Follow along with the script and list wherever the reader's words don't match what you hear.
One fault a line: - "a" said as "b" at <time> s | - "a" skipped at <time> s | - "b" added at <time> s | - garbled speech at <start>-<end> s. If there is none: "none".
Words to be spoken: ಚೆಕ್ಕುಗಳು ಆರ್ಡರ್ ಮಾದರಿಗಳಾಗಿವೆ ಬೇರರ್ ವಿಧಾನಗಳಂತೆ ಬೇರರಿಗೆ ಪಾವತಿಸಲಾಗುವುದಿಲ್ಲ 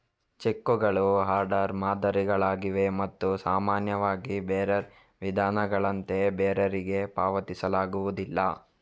- "ಮತ್ತು ಸಾಮಾನ್ಯವಾಗಿ" added at 3.0 s